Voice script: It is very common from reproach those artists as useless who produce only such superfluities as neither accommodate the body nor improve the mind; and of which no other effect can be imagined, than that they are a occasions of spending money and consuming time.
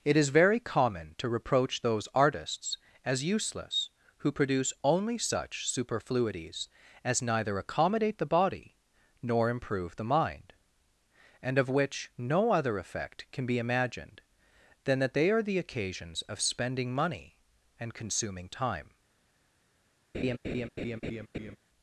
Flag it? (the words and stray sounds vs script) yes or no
yes